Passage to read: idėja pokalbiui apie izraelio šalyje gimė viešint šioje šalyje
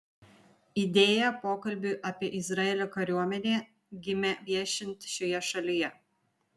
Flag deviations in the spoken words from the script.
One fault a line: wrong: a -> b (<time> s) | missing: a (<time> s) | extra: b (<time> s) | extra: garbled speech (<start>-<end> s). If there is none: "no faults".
wrong: šalyje -> kariuomenę (3.0 s)